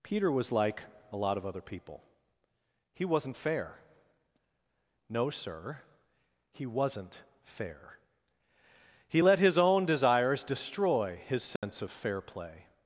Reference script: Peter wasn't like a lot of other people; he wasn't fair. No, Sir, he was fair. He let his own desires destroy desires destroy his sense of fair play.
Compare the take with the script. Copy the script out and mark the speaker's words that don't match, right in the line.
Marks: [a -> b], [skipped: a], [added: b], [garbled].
Peter [wasn't -> was] like a lot of other people; he wasn't fair. No, Sir, he [was -> wasn't] fair. He let his own desires destroy [skipped: desires destroy] his sense of fair play.